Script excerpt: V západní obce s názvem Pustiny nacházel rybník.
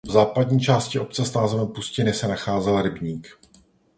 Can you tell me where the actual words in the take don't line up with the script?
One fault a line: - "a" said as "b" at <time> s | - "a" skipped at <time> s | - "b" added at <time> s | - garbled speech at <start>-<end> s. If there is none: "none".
- "části" added at 0.6 s
- "se" added at 2.1 s